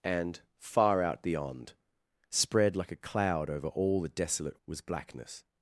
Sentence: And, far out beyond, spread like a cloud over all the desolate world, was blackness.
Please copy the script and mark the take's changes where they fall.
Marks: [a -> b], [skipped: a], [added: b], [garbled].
And, far out beyond, spread like a cloud over all the desolate [skipped: world,] was blackness.